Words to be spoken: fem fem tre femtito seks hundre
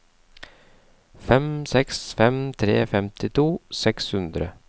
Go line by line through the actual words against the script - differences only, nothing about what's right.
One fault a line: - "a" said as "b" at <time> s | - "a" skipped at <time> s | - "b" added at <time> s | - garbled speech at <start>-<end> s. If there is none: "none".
- "seks" added at 1.7 s